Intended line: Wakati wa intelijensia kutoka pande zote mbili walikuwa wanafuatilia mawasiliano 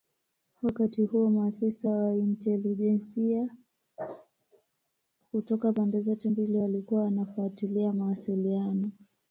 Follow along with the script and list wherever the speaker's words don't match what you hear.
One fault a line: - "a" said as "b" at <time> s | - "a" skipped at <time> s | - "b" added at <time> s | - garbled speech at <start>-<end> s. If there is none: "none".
- "huo maafisa" added at 1.1 s